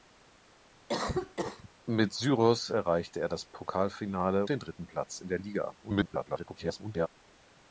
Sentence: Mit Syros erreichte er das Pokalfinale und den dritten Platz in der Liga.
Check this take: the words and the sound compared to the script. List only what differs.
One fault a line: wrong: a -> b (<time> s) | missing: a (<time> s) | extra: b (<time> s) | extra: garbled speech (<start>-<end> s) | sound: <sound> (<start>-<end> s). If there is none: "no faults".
sound: cough (0.9-1.7 s)
missing: und (4.4 s)
extra: garbled speech (5.8-7.1 s)